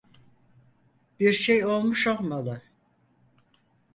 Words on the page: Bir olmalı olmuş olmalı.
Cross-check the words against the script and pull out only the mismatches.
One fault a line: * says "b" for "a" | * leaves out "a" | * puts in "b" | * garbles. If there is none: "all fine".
* says "şey" for "olmalı"